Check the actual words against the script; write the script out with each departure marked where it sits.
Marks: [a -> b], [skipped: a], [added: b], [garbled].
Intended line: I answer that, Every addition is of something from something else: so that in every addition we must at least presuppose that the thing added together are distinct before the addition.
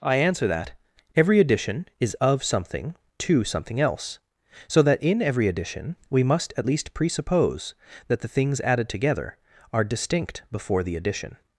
I answer that, Every addition is of something [from -> to] something else: so that in every addition we must at least presuppose that the [thing -> things] added together are distinct before the addition.